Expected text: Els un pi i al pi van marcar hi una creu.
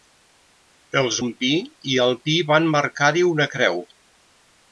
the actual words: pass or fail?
pass